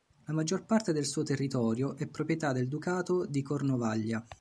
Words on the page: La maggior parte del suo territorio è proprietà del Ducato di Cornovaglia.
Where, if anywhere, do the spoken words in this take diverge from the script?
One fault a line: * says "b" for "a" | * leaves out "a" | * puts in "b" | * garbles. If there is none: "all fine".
all fine